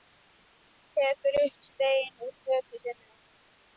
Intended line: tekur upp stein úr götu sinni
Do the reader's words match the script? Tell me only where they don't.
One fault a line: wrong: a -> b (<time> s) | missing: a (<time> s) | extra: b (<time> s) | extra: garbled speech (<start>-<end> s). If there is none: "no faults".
no faults